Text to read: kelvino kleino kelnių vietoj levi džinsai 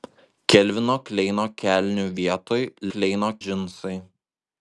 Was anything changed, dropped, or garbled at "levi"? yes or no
yes